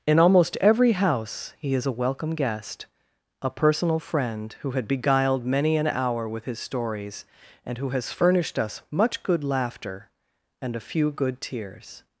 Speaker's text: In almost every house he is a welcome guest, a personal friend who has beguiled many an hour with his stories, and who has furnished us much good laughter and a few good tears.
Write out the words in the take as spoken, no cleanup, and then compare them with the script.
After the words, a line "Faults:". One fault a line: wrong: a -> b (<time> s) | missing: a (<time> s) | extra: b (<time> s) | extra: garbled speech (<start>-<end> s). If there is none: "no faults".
In almost every house he is a welcome guest, a personal friend who had beguiled many an hour with his stories, and who has furnished us much good laughter and a few good tears.
Faults:
wrong: has -> had (4.7 s)